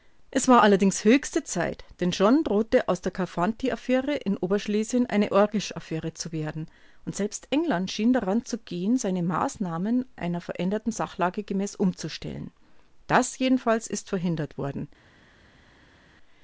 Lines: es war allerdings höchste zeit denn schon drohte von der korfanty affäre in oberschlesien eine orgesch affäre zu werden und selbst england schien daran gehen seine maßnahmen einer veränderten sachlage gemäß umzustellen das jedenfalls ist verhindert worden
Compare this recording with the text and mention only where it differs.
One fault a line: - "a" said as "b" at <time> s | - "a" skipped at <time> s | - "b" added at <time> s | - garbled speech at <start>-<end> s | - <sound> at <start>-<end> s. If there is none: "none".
- "von" said as "aus" at 2.9 s
- "zu" added at 8.5 s